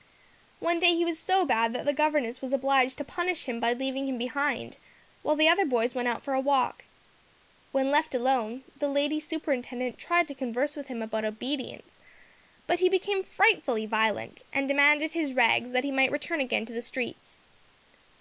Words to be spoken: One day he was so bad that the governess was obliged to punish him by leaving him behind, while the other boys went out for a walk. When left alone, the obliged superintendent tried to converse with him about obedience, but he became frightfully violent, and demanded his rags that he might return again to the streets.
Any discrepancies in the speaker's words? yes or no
yes